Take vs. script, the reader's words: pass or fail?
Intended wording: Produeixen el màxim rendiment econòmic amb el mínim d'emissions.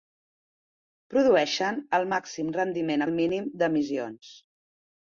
fail